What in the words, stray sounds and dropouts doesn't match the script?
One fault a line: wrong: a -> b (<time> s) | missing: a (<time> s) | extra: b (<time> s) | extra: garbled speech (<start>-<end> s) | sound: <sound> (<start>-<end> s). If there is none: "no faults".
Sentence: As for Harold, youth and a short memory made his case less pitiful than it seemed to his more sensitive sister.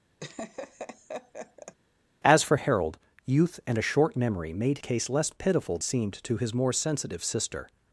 sound: laugh (0.2-1.8 s)
missing: his (4.8 s)
missing: than it (5.8 s)